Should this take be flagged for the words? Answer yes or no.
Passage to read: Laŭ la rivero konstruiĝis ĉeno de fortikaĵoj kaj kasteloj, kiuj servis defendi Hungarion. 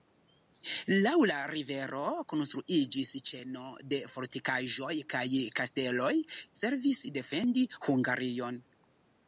yes